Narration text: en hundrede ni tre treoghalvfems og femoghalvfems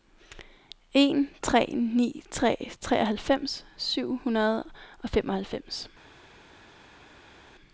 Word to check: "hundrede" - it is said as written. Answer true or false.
false